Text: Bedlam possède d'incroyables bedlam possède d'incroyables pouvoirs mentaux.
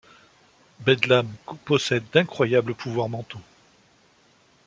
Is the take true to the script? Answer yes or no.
no